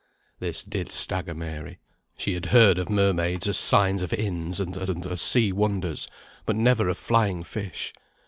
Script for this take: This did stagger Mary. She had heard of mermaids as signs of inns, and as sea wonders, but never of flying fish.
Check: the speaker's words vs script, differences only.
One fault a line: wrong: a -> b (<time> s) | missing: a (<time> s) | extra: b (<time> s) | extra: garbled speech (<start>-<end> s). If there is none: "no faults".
extra: and as (4.9 s)